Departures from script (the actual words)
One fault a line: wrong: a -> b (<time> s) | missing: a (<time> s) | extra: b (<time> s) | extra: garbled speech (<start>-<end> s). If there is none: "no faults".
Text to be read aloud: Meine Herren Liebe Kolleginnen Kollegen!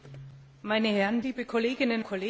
no faults